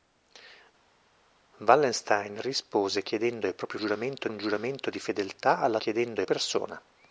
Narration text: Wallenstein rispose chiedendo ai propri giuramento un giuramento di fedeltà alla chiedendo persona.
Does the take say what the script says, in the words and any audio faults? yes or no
yes